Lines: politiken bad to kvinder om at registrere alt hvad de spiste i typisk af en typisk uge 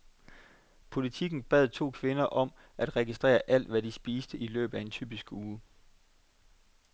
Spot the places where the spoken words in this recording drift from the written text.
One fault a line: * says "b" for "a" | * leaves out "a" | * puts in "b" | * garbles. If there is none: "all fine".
* says "løbet" for "typisk"